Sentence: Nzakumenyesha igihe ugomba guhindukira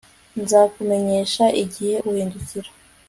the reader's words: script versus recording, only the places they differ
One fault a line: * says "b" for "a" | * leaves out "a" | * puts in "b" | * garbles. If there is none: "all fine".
* leaves out "ugomba"